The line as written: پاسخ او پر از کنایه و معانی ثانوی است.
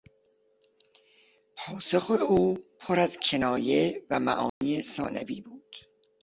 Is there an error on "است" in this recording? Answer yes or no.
yes